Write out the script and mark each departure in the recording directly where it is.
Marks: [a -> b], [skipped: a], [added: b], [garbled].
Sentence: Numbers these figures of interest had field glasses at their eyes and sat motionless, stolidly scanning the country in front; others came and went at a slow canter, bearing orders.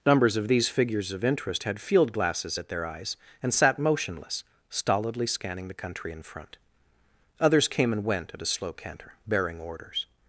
Numbers [added: of] these figures of interest had field glasses at their eyes and sat motionless, stolidly scanning the country in front; others came and went at a slow canter, bearing orders.